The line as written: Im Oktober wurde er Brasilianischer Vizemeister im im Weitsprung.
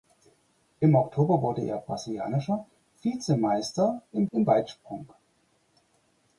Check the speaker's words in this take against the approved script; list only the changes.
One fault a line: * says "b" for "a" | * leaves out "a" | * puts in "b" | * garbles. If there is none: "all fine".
all fine